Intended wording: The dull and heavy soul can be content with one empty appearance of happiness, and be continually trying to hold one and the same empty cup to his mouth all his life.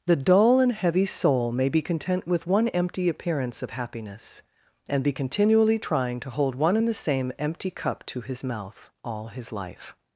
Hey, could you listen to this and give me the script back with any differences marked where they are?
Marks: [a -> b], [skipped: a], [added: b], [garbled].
The dull and heavy soul [can -> may] be content with one empty appearance of happiness, and be continually trying to hold one and the same empty cup to his mouth all his life.